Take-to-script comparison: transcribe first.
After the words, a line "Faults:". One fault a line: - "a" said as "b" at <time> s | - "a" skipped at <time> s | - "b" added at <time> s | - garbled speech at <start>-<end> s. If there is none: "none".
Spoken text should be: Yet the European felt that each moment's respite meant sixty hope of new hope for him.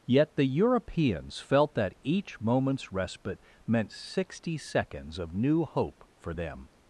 Yet the Europeans felt that each moment's respite meant sixty seconds of new hope for them.
Faults:
- "European" said as "Europeans" at 0.5 s
- "hope" said as "seconds" at 4.6 s
- "him" said as "them" at 6.3 s